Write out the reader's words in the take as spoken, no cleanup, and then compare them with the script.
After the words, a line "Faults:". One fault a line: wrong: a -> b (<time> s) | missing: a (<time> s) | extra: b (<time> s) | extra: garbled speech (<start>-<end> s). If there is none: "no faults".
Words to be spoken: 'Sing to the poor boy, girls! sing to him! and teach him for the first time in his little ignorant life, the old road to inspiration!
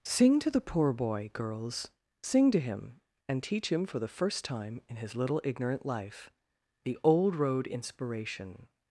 'Sing to the poor boy, girls! sing to him! and teach him for the first time in his little ignorant life, the old road inspiration!
Faults:
missing: to (7.7 s)